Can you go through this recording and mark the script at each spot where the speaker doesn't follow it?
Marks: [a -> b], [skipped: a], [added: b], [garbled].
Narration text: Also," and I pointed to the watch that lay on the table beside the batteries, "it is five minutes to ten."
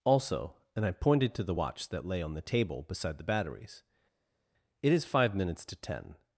Also," and I pointed to the watch that lay on the table beside the batteries, "it is five minutes to ten."